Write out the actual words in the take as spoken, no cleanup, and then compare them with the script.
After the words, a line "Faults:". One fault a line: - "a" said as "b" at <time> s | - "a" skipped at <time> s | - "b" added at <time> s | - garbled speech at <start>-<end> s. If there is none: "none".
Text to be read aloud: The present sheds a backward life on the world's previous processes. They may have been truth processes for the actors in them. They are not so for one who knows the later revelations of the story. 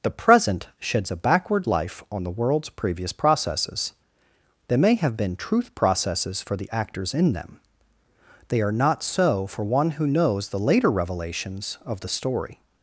The present sheds a backward life on the world's previous processes. They may have been truth processes for the actors in them. They are not so for one who knows the later revelations of the story.
Faults:
none